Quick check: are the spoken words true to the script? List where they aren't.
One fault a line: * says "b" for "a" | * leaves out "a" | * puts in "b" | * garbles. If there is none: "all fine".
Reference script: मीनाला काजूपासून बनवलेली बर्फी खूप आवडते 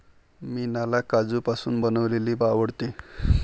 * leaves out "बर्फी खूप"